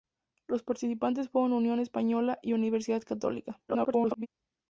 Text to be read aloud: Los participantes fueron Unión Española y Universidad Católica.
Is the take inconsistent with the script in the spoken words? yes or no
yes